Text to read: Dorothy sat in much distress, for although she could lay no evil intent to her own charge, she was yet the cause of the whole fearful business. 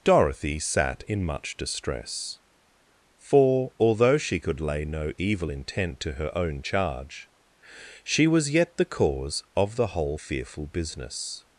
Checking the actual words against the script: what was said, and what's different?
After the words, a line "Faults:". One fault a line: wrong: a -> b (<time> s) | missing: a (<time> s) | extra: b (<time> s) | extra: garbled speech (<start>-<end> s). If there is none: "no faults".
Dorothy sat in much distress, for although she could lay no evil intent to her own charge, she was yet the cause of the whole fearful business.
Faults:
no faults